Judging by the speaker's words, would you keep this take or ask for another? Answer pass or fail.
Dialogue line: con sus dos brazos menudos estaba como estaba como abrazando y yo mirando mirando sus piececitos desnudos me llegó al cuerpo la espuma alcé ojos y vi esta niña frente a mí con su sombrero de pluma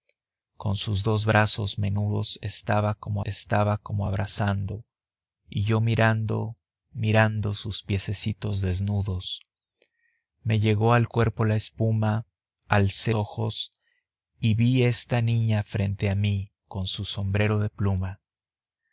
pass